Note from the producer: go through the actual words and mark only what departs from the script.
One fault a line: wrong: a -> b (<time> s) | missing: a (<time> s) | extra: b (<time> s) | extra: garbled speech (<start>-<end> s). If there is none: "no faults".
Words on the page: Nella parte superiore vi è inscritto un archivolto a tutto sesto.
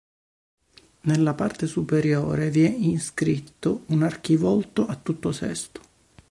no faults